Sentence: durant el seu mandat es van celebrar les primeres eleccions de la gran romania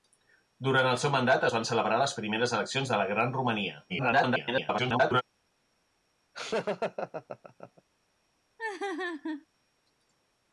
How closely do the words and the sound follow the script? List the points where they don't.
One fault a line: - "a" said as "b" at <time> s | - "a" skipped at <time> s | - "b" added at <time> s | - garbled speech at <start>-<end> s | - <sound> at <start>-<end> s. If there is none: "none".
- garbled speech at 3.9-5.2 s
- laugh at 6.3-7.8 s
- laugh at 8.6-9.5 s